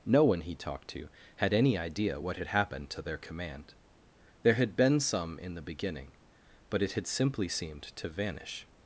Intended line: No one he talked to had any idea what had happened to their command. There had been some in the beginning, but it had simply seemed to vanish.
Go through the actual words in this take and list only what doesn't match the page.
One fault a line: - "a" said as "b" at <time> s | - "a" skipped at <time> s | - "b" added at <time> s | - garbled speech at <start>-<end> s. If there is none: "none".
none